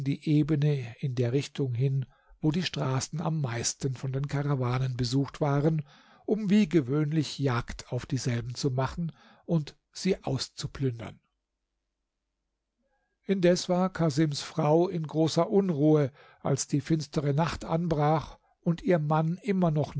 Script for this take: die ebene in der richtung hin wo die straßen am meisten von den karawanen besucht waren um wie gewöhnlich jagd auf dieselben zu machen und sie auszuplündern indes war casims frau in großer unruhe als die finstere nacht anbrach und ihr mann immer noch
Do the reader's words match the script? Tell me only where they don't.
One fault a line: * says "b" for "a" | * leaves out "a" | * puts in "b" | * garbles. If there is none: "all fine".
all fine